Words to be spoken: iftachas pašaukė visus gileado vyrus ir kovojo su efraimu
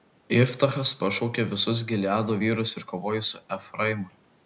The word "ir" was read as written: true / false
true